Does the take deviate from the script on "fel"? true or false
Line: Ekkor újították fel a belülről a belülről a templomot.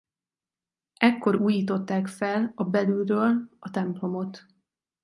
false